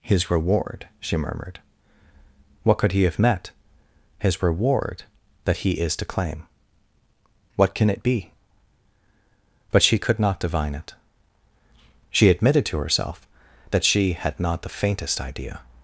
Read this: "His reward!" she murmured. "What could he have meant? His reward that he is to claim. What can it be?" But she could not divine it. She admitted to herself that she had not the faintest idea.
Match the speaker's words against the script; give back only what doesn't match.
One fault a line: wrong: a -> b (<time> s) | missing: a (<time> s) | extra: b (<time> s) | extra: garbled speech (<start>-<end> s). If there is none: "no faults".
wrong: meant -> met (3.2 s)